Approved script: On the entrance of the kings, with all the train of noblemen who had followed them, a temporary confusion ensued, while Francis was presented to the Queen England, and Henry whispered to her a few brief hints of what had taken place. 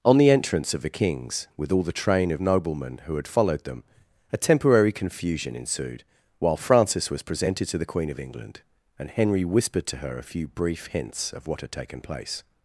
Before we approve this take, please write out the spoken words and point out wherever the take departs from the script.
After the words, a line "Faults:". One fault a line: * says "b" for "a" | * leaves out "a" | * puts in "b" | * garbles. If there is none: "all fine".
On the entrance of the kings, with all the train of noblemen who had followed them, a temporary confusion ensued, while Francis was presented to the Queen of England, and Henry whispered to her a few brief hints of what had taken place.
Faults:
* puts in "of"